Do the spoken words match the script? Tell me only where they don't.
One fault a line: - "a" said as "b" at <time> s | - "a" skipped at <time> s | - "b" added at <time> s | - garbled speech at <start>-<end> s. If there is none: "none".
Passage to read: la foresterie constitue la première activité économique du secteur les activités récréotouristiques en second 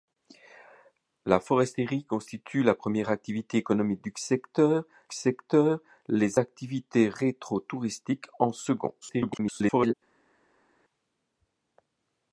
- "secteur" added at 5.1 s
- garbled speech at 9.0-9.9 s